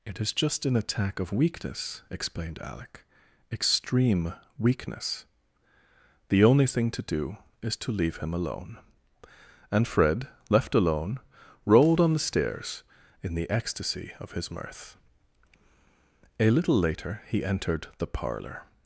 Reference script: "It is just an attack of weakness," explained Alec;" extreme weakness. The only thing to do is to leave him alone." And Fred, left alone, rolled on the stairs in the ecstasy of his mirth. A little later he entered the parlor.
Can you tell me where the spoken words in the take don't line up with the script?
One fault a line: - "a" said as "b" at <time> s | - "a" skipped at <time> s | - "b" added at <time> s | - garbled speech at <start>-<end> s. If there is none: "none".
none